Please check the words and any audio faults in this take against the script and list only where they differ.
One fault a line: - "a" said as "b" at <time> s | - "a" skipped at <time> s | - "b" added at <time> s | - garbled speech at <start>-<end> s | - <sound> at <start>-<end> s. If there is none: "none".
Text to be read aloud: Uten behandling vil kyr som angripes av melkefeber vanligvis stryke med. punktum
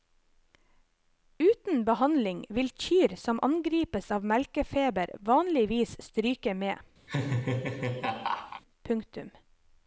- laugh at 7.1-8.6 s